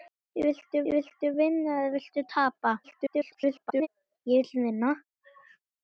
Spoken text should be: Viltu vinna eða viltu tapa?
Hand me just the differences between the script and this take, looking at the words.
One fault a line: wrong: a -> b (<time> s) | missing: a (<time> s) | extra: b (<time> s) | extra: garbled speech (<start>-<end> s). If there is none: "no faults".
extra: viltu (0.9 s)
extra: garbled speech (2.8-3.9 s)